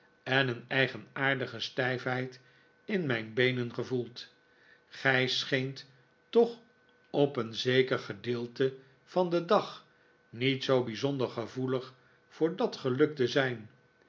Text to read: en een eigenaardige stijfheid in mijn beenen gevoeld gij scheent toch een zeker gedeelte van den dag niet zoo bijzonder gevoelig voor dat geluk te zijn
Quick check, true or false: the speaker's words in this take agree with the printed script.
false